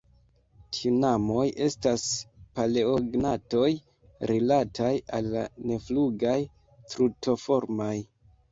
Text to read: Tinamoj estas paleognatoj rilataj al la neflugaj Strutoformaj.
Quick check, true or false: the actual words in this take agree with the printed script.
true